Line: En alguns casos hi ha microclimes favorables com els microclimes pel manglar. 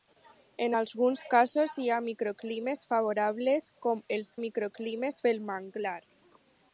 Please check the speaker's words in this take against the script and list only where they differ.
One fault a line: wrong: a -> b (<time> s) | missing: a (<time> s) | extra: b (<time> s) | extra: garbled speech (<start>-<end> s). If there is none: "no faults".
no faults